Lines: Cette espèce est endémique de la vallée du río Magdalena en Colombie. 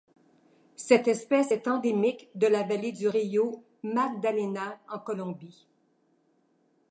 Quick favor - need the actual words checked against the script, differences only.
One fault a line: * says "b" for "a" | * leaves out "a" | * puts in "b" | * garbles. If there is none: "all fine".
all fine